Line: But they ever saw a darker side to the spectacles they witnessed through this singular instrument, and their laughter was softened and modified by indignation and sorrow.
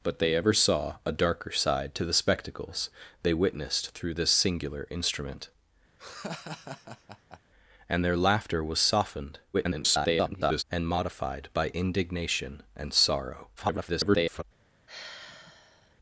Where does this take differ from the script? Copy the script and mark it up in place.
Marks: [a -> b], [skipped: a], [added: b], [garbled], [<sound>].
But they ever saw a darker side to the spectacles they witnessed through this singular instrument, [laugh] and their laughter was softened [garbled] and modified by indignation and sorrow. [garbled] [sigh]